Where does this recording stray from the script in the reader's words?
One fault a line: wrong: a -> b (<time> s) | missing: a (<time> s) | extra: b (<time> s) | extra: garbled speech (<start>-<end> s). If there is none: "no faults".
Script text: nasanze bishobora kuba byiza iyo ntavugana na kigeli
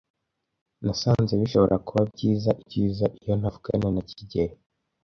extra: byiza (2.6 s)